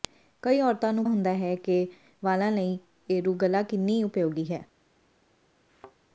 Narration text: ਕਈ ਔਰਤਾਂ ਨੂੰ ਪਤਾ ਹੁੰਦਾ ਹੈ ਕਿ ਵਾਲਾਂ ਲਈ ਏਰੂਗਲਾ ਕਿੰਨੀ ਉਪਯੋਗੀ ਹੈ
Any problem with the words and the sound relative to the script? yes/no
yes